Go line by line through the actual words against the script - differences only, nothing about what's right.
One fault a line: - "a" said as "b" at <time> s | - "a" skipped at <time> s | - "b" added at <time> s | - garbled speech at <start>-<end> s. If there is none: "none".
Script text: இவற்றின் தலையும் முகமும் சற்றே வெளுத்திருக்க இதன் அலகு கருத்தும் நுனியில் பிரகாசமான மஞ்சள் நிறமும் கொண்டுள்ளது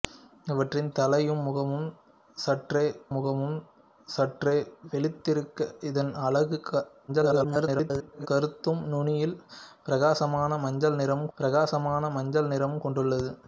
- "முகமும் சற்றே" added at 3.1 s
- garbled speech at 7.1-8.3 s
- "பிரகாசமான மஞ்சள் நிறமும்" added at 11.4 s